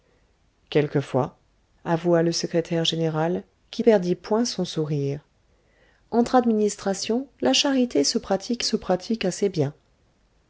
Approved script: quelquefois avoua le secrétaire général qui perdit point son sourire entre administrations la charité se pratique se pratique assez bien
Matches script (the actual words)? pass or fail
pass